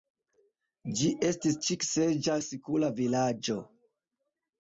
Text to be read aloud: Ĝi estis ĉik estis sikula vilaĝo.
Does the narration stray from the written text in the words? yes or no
yes